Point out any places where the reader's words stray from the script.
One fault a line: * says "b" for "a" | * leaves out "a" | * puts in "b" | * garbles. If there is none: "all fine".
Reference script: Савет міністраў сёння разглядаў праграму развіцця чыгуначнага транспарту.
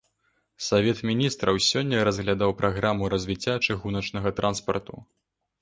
all fine